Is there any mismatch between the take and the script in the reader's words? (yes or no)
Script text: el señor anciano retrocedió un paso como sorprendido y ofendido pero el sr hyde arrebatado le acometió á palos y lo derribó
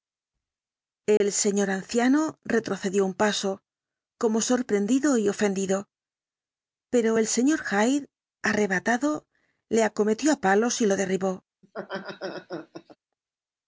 no